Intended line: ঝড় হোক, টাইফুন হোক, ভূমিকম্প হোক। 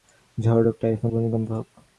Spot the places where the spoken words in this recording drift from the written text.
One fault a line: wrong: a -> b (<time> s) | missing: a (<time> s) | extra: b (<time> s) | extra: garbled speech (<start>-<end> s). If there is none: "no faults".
missing: হোক (1.1 s)